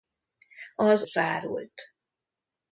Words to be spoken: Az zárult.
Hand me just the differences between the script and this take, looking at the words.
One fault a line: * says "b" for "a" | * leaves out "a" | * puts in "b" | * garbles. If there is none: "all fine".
all fine